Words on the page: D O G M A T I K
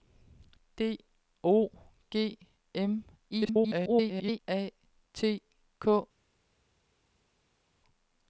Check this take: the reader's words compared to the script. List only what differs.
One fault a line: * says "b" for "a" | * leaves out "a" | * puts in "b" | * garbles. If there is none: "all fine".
* garbles
* leaves out "I"